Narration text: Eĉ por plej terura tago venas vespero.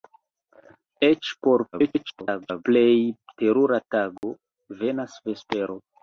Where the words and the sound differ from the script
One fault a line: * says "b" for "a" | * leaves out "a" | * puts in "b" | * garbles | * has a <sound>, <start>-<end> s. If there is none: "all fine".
* garbles
* has a dropout, 4.2-4.2 s